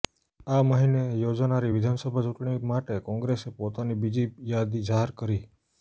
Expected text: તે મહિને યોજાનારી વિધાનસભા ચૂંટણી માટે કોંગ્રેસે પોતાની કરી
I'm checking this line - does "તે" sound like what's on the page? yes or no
no